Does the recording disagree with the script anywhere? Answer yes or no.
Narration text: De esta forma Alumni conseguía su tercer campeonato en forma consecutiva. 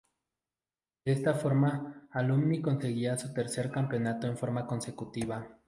no